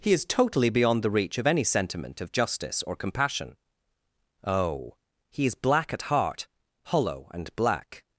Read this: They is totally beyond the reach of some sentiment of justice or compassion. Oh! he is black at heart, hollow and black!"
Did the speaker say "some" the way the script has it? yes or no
no